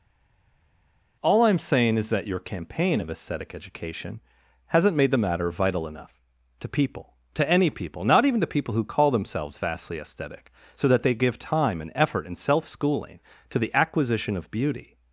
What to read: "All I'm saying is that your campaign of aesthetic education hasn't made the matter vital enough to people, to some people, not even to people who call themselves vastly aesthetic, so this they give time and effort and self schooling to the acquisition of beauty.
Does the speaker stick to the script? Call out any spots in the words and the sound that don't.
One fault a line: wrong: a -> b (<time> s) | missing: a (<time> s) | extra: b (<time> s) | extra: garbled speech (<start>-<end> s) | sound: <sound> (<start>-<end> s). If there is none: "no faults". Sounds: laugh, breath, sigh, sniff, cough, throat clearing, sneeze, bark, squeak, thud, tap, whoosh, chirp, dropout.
wrong: some -> any (7.5 s)
wrong: this -> that (10.9 s)